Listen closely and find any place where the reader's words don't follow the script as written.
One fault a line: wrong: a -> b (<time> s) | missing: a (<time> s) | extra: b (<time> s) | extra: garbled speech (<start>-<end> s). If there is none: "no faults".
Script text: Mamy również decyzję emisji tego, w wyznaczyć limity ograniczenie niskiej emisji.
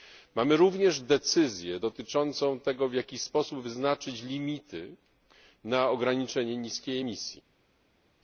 wrong: emisji -> dotyczącą (1.8 s)
extra: jaki sposób (2.9 s)
extra: na (5.6 s)